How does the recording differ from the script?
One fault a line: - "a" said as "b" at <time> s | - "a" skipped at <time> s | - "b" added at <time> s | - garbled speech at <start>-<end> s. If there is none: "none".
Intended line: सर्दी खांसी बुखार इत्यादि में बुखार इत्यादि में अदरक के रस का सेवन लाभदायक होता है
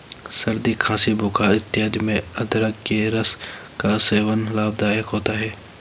- "बुखार इत्यादि में" skipped at 2.2 s